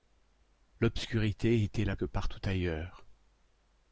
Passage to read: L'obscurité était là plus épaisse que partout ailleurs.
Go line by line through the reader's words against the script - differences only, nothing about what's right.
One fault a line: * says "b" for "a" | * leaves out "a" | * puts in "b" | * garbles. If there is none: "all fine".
* leaves out "plus épaisse"